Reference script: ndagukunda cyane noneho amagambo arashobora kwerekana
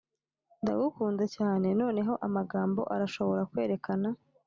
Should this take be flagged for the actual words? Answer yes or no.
no